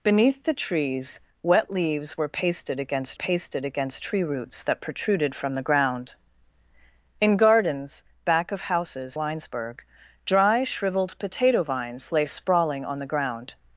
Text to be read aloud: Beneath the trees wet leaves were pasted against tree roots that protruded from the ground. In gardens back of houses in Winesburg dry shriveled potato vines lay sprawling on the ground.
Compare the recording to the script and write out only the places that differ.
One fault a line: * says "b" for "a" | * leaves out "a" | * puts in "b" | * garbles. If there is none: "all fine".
* puts in "pasted against"
* leaves out "in"